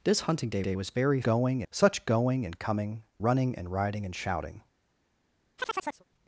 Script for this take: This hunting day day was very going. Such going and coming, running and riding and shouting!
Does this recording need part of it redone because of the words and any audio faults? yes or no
yes